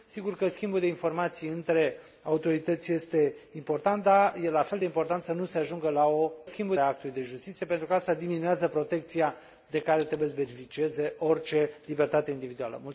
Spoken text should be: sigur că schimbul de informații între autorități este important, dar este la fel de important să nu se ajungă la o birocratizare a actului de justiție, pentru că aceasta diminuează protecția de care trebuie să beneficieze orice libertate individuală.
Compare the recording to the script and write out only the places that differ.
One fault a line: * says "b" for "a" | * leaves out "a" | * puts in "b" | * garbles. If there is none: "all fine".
* says "schimbul" for "birocratizare"